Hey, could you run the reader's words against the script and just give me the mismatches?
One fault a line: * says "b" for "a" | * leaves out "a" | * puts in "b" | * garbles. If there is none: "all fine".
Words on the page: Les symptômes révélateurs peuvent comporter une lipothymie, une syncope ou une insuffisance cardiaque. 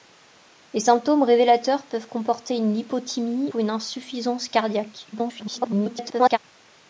* leaves out "une syncope"
* garbles